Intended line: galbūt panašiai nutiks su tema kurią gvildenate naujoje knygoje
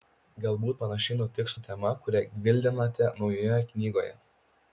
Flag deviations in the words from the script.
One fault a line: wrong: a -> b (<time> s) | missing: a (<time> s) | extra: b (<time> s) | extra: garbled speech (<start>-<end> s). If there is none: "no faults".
no faults